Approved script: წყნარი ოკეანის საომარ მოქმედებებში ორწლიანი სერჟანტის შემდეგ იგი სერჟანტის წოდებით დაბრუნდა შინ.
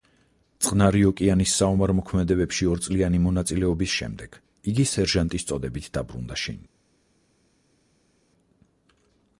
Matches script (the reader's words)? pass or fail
fail